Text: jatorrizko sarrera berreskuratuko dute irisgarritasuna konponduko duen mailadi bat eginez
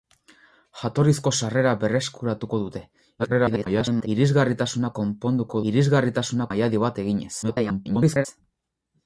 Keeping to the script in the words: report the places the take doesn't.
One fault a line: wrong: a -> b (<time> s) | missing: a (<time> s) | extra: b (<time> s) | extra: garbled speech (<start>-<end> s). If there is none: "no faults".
extra: garbled speech (3.2-4.1 s)
wrong: duen -> irisgarritasuna (5.7 s)
extra: garbled speech (7.4-8.3 s)